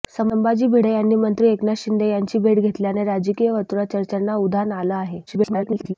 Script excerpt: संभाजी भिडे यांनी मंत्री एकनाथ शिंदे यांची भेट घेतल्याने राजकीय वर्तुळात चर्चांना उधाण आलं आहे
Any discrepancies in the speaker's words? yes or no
yes